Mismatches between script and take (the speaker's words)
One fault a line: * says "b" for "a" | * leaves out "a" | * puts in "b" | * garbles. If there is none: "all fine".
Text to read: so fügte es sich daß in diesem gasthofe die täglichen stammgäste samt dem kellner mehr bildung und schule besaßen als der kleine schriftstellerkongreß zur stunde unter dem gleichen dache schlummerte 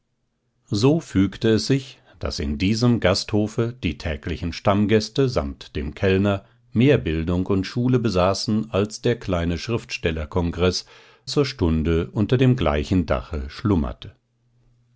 all fine